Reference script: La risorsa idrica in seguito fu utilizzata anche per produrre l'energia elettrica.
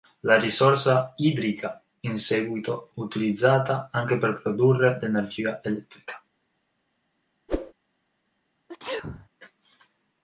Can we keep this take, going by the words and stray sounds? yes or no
no